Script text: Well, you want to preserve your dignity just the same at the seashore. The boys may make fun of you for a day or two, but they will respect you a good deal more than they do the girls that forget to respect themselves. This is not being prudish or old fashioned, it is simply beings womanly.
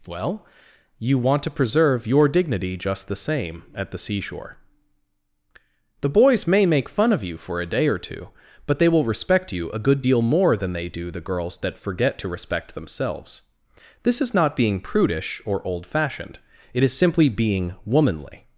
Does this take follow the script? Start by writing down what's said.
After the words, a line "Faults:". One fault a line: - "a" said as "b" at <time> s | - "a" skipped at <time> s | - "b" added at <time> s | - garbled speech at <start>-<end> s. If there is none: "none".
Well, you want to preserve your dignity just the same at the seashore. The boys may make fun of you for a day or two, but they will respect you a good deal more than they do the girls that forget to respect themselves. This is not being prudish or old fashioned, it is simply being womanly.
Faults:
- "beings" said as "being" at 17.3 s